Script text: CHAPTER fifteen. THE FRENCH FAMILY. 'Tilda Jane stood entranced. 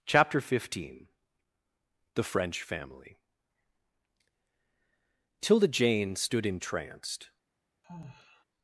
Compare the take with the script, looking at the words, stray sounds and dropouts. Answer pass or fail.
fail